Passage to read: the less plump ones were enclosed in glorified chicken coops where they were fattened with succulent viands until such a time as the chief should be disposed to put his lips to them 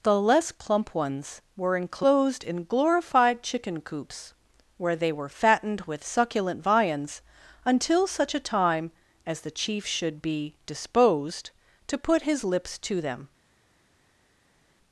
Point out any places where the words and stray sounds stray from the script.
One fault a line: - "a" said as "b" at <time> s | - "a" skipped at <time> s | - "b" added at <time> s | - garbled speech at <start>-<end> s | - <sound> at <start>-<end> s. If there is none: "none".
none